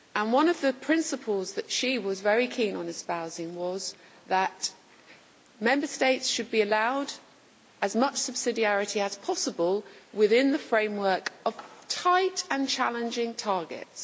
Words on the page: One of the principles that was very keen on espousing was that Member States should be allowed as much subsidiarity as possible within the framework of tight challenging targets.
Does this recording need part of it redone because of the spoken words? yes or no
yes